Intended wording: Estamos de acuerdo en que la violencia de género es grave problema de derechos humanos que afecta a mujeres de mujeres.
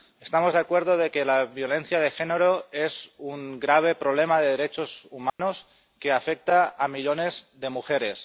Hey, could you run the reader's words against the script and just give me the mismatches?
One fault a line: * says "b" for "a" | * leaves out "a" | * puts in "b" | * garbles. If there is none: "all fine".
* puts in "un"
* says "millones" for "mujeres"